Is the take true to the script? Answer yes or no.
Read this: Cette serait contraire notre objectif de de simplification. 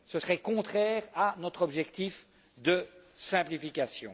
no